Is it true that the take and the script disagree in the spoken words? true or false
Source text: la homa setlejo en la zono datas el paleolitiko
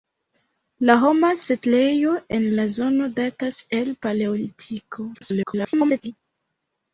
true